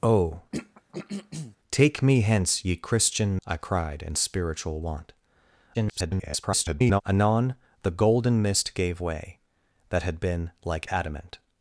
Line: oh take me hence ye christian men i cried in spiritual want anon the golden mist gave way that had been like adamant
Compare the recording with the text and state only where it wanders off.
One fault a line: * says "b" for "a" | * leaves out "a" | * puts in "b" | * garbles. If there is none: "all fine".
* leaves out "men"
* garbles